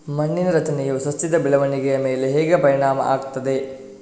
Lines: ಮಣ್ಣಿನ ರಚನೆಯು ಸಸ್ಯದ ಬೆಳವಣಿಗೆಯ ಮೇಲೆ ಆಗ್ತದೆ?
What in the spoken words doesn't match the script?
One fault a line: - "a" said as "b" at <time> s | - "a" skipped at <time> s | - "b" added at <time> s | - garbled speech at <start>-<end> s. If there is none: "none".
- "ಹೇಗೆ ಪರಿಣಾಮ" added at 2.3 s